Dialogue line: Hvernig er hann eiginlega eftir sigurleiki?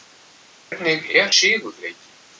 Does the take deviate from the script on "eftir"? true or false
true